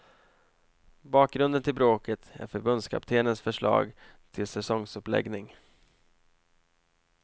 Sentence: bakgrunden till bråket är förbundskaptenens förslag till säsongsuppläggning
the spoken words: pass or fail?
pass